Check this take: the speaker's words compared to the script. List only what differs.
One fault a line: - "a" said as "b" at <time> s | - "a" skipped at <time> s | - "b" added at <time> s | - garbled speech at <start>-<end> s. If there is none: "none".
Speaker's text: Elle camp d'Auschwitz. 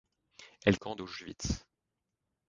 none